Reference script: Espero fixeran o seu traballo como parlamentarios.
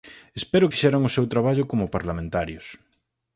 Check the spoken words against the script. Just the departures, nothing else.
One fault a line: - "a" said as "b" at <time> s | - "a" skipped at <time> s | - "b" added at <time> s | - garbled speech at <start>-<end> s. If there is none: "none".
none